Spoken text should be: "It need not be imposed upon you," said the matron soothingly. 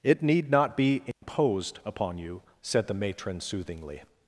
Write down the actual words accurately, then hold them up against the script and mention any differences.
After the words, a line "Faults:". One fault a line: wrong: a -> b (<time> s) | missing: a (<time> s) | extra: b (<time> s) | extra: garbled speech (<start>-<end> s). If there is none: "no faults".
"It need not be imposed upon you," said the matron soothingly.
Faults:
no faults